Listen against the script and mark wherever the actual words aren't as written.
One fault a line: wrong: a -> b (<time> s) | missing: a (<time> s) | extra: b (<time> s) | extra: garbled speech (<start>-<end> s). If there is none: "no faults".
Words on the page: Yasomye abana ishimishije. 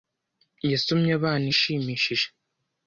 no faults